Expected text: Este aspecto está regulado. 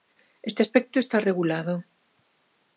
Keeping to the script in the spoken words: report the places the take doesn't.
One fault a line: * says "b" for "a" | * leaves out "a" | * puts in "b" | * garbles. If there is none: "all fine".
all fine